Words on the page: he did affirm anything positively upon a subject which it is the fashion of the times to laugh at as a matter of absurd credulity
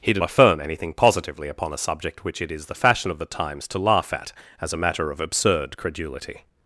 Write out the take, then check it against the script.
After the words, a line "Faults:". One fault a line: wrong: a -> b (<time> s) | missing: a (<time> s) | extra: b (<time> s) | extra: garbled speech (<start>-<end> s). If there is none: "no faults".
he did affirm anything positively upon a subject which it is the fashion of the times to laugh at as a matter of absurd credulity
Faults:
no faults